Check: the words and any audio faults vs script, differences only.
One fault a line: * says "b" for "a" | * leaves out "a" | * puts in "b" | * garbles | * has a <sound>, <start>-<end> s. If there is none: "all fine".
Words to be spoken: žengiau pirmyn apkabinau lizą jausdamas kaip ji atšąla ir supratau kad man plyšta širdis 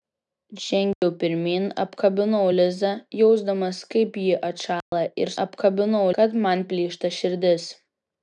* has a dropout, 0.9-1.0 s
* has a dropout, 4.8-4.9 s
* says "apkabinau" for "supratau"